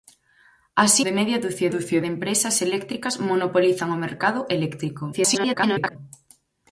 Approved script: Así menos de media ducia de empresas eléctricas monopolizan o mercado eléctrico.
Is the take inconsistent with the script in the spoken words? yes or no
yes